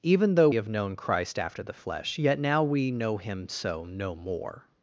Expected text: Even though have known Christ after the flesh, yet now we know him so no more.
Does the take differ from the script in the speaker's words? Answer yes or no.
no